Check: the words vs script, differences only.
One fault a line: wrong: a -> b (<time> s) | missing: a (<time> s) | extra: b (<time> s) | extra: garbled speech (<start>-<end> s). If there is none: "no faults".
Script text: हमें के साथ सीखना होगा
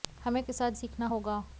no faults